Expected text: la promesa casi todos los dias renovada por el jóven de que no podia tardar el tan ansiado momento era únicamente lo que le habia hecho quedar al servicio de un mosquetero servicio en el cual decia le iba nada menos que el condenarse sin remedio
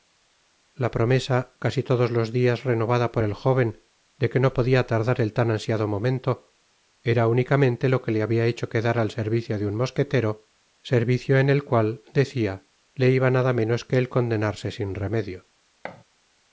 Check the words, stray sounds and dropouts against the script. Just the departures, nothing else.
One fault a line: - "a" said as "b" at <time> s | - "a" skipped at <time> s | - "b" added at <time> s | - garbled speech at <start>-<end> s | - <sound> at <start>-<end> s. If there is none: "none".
- thud at 15.8-16.0 s